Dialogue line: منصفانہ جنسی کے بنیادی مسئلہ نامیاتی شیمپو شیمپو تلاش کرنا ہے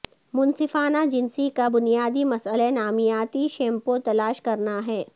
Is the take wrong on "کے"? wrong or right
wrong